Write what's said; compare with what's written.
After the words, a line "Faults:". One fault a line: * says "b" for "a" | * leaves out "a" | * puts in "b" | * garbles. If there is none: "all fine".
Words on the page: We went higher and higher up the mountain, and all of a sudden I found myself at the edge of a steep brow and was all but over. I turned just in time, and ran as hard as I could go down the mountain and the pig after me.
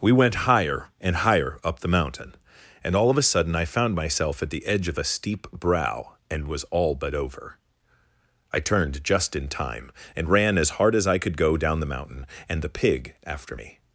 We went higher and higher up the mountain, and all of a sudden I found myself at the edge of a steep brow and was all but over. I turned just in time, and ran as hard as I could go down the mountain and the pig after me.
Faults:
all fine